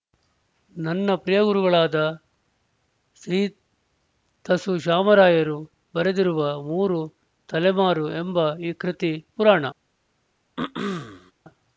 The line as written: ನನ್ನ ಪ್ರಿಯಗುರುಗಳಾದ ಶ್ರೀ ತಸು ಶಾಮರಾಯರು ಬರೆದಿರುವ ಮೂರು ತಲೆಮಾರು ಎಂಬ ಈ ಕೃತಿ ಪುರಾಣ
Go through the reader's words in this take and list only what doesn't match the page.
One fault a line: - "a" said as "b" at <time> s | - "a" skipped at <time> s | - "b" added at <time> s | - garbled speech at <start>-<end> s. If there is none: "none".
none